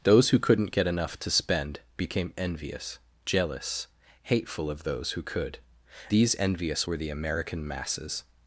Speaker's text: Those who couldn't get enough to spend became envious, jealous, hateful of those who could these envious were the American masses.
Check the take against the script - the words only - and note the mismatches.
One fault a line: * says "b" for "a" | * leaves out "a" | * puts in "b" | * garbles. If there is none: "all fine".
all fine